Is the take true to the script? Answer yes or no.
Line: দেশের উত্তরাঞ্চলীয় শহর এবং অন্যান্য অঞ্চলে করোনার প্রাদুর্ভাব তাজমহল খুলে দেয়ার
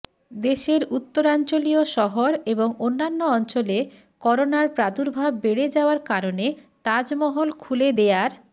no